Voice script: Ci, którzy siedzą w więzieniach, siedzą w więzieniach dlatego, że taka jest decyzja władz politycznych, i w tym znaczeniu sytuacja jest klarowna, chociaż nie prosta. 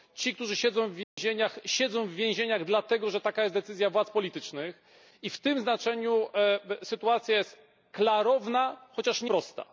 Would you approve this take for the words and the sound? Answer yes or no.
no